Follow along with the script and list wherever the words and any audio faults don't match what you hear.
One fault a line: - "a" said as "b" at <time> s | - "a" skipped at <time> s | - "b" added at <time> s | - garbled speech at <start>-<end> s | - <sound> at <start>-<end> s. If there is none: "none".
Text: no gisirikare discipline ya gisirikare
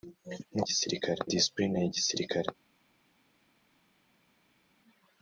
none